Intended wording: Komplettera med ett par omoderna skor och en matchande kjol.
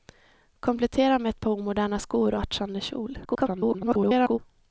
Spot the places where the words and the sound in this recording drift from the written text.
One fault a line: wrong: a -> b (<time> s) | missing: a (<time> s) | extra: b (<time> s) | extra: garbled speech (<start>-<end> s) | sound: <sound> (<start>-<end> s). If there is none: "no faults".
missing: en (2.4 s)
extra: garbled speech (3.2-4.4 s)